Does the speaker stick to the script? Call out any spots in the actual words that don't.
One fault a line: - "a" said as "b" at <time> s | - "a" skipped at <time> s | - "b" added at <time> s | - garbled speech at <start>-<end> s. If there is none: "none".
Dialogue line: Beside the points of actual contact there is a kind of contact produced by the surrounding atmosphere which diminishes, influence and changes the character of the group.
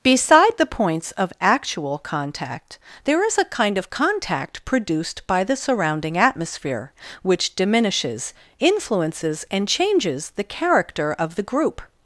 - "influence" said as "influences" at 8.6 s